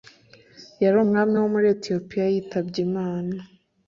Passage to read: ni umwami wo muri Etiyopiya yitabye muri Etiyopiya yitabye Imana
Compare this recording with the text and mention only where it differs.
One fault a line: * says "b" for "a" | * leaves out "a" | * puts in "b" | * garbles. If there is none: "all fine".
* says "yari" for "ni"
* leaves out "muri Etiyopiya yitabye"